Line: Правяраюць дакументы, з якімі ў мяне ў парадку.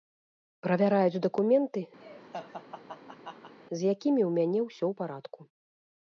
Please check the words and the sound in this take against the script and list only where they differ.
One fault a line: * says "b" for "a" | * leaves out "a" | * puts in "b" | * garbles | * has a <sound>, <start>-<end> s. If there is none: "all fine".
* has a laugh, 2.0-3.5 s
* puts in "ўсё"